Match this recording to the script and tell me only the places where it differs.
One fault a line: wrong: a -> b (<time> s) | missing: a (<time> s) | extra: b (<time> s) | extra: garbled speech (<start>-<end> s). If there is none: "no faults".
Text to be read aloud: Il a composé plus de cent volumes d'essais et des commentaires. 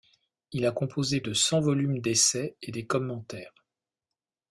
missing: plus (1.2 s)